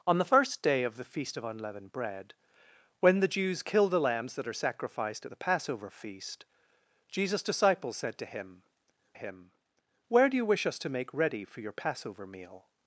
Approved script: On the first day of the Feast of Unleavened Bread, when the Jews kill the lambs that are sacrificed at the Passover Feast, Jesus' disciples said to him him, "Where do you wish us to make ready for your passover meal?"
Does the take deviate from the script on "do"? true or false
false